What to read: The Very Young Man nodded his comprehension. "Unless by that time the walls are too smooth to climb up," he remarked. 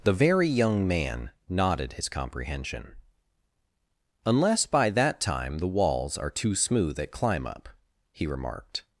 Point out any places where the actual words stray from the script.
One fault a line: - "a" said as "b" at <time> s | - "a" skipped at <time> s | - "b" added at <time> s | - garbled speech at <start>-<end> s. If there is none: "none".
- "to" said as "at" at 7.0 s